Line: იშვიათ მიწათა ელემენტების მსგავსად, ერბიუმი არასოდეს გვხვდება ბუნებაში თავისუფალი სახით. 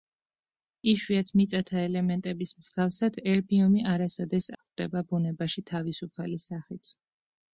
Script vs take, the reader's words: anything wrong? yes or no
no